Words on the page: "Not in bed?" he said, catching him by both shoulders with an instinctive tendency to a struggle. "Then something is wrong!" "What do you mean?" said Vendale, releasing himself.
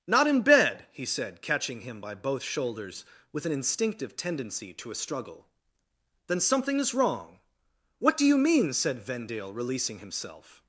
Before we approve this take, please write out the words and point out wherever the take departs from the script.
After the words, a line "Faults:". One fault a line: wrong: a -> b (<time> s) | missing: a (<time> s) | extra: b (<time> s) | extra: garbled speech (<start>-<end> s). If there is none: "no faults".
"Not in bed?" he said, catching him by both shoulders with an instinctive tendency to a struggle. "Then something is wrong!" "What do you mean?" said Vendale, releasing himself.
Faults:
no faults